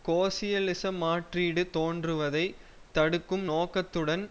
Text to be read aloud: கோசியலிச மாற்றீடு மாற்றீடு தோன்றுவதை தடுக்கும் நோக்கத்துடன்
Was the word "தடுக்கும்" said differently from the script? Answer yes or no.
no